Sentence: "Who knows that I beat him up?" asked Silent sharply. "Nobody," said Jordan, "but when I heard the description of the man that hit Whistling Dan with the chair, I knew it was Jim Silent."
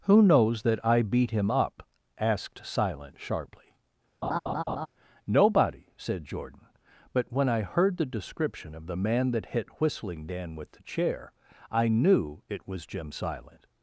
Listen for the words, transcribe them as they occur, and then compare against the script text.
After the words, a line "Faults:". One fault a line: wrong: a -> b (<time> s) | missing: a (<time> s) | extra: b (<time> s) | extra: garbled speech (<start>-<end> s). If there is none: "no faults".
"Who knows that I beat him up?" asked Silent sharply. "Nobody," said Jordan, "but when I heard the description of the man that hit Whistling Dan with the chair, I knew it was Jim Silent."
Faults:
no faults